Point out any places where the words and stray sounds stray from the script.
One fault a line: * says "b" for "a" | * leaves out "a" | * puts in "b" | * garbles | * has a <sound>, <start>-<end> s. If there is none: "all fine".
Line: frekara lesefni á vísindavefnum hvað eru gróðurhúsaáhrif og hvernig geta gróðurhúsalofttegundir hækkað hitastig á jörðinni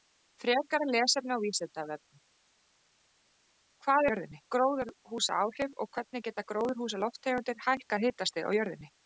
* says "jörðinni" for "eru"